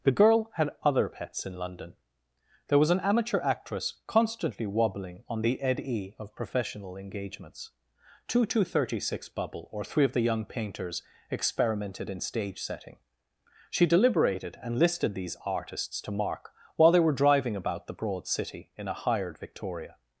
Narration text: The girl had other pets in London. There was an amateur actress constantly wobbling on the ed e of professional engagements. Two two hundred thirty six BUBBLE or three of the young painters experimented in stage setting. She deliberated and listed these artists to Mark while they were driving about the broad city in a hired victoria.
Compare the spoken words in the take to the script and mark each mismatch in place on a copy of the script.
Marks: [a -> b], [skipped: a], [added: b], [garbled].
The girl had other pets in London. There was an amateur actress constantly wobbling on the ed e of professional engagements. Two two [skipped: hundred] thirty six BUBBLE or three of the young painters experimented in stage setting. She deliberated and listed these artists to Mark while they were driving about the broad city in a hired victoria.